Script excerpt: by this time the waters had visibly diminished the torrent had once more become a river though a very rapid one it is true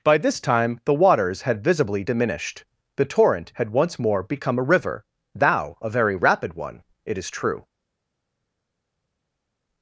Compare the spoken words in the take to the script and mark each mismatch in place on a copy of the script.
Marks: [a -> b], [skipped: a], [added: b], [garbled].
by this time the waters had visibly diminished the torrent had once more become a river [though -> thou] a very rapid one it is true